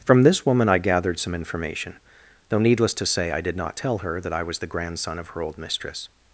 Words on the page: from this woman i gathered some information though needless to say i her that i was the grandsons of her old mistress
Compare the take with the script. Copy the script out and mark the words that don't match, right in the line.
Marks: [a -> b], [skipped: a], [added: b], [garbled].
from this woman i gathered some information though needless to say i [added: did not tell] her that i was the [grandsons -> grandson] of her old mistress